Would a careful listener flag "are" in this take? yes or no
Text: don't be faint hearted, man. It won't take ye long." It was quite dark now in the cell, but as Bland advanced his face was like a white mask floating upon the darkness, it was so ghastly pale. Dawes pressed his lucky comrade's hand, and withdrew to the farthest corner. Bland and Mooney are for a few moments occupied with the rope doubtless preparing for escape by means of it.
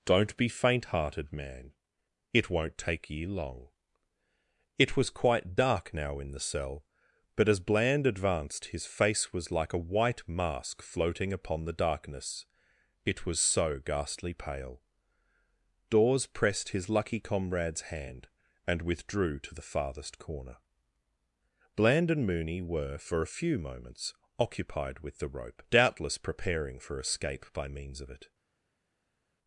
yes